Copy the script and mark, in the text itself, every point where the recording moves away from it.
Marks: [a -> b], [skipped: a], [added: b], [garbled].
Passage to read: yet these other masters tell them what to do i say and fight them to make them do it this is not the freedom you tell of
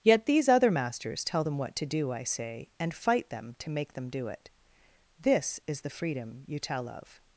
yet these other masters tell them what to do i say and fight them to make them do it this is [skipped: not] the freedom you tell of